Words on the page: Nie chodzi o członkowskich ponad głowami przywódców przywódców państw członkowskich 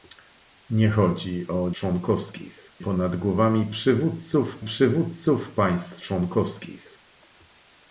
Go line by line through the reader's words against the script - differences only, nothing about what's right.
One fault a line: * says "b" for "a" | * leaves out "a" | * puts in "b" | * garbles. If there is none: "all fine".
all fine